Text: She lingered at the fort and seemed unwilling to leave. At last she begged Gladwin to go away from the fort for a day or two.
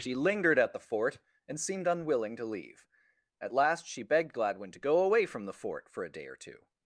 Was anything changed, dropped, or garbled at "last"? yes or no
no